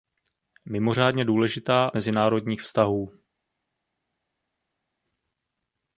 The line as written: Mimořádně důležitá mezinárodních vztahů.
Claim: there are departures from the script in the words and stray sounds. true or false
false